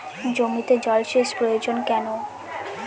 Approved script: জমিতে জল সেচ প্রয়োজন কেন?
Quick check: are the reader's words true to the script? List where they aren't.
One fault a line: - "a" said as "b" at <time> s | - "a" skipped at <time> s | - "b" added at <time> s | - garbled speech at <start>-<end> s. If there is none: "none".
none